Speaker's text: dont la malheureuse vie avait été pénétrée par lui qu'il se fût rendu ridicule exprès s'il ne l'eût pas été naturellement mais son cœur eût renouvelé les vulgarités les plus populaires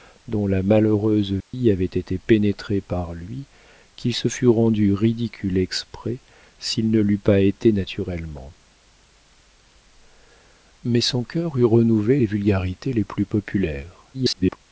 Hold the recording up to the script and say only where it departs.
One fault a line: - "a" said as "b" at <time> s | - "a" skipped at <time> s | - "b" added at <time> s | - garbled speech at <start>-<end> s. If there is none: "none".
- garbled speech at 14.1-14.6 s